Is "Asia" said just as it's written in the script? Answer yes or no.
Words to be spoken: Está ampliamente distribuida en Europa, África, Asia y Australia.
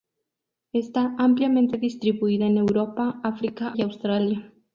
no